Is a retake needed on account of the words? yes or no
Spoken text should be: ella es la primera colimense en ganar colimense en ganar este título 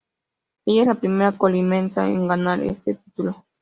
yes